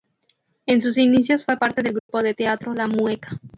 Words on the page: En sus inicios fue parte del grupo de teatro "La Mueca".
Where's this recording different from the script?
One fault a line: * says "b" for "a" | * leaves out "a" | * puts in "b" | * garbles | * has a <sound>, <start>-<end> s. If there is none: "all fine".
* has a dropout, 2.0-2.1 s